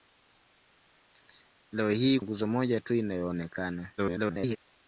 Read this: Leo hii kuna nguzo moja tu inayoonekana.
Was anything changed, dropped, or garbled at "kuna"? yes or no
yes